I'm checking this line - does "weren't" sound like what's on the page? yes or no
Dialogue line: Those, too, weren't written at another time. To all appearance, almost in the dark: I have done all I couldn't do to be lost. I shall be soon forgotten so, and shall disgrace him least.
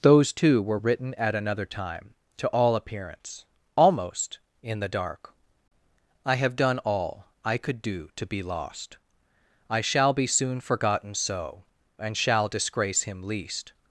no